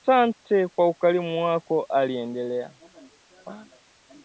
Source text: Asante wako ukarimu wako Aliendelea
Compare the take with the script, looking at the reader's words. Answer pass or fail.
fail